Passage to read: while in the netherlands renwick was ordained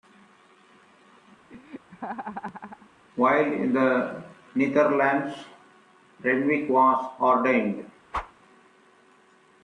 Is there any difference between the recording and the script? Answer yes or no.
no